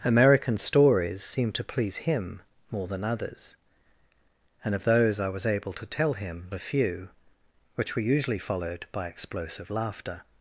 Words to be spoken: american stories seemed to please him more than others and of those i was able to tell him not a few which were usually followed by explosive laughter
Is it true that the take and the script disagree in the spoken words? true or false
true